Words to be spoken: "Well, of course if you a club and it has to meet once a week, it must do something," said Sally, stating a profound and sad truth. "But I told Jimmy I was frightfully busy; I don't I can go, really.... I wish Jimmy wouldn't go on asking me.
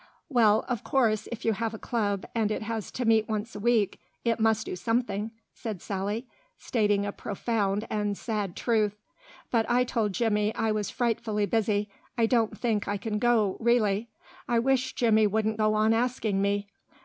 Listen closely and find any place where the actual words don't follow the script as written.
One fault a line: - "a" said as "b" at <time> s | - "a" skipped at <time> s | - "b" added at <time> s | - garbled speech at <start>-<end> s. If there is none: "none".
- "have" added at 1.5 s
- "think" added at 12.5 s